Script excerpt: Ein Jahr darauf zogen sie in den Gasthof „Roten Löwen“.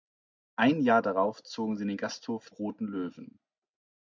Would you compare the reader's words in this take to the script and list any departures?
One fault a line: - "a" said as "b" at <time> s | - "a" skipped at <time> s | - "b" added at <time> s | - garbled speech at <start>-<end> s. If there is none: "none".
none